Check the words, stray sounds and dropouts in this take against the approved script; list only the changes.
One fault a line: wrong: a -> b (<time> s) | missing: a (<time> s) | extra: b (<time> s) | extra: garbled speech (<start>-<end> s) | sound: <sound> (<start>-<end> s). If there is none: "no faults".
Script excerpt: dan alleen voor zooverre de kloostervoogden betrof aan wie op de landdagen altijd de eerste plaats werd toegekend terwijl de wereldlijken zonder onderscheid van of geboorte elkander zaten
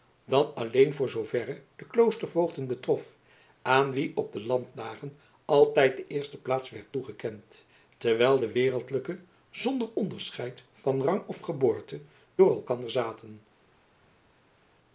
extra: rang (11.0 s)
extra: door (12.4 s)